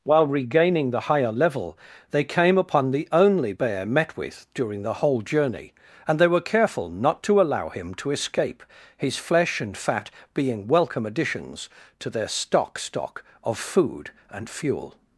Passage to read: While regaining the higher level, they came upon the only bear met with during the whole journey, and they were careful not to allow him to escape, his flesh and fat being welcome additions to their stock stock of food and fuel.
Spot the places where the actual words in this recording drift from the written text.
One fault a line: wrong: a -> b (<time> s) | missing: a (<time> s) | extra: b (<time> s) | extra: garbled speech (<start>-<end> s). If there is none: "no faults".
no faults